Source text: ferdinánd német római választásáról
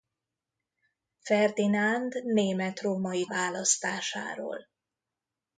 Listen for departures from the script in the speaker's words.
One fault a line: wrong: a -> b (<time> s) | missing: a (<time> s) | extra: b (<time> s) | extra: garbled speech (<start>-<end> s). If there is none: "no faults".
no faults